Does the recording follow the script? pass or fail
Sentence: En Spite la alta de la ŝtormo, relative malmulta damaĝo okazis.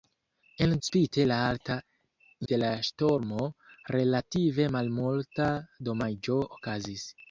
pass